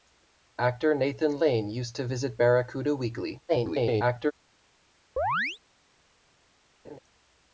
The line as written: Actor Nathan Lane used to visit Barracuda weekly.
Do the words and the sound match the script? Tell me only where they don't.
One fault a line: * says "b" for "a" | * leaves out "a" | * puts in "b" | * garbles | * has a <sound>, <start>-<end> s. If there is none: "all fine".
* garbles
* has a chirp, 5.2-5.6 s
* has a laugh, 6.8-7.0 s